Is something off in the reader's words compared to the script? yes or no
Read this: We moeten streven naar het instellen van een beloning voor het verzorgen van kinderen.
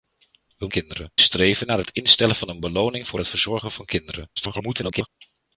yes